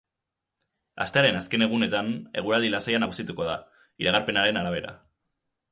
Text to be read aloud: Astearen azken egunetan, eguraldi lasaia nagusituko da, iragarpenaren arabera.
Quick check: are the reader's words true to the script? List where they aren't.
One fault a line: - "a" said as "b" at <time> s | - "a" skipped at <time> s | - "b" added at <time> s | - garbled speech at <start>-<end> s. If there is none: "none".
none